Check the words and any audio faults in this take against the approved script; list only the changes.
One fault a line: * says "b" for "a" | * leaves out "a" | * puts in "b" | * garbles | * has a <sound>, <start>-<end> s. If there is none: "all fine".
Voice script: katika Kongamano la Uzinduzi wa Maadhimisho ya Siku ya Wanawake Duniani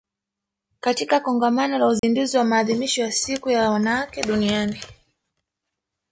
* has a dropout, 2.0-2.0 s